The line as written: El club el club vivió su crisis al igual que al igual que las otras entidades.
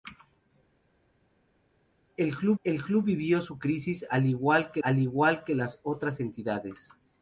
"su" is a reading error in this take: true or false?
false